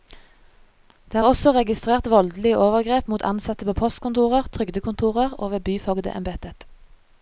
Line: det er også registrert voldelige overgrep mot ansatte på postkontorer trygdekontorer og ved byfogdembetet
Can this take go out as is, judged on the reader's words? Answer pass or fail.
pass